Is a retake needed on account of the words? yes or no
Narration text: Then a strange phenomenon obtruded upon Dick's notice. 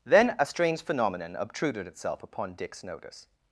yes